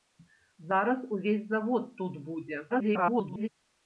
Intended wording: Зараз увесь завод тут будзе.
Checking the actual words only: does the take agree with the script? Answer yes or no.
no